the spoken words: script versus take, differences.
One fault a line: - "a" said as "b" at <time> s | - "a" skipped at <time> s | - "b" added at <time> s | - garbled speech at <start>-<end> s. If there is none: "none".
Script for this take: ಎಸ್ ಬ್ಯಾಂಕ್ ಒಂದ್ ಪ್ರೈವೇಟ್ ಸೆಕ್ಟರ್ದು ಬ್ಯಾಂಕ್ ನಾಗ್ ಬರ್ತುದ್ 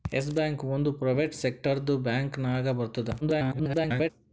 - garbled speech at 3.2-4.1 s